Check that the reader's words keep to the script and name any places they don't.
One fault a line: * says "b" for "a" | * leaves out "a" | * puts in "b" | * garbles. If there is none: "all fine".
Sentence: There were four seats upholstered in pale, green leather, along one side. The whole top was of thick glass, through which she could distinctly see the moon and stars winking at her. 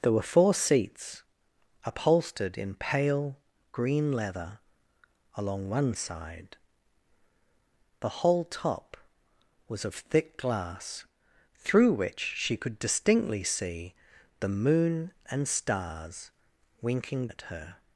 all fine